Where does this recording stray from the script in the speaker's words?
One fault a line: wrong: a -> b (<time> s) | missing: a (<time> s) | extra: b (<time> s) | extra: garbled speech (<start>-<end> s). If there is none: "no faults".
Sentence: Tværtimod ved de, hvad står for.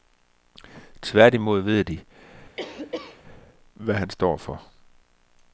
extra: han (3.9 s)